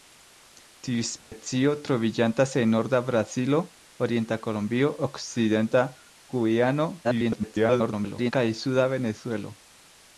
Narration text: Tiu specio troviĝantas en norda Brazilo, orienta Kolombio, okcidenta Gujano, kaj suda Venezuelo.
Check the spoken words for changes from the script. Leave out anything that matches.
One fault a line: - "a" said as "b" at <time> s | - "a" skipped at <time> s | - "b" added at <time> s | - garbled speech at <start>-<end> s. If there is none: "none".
- garbled speech at 7.0-8.3 s